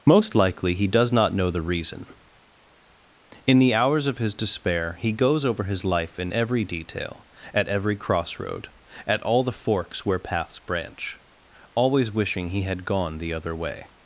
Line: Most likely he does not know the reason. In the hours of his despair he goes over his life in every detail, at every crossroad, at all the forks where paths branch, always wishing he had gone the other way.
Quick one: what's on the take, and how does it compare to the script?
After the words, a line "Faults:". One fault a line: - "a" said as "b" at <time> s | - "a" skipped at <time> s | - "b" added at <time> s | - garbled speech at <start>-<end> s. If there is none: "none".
Most likely he does not know the reason. In the hours of his despair he goes over his life in every detail, at every crossroad, at all the forks where paths branch, always wishing he had gone the other way.
Faults:
none